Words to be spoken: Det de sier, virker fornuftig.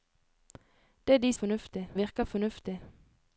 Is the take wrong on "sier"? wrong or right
wrong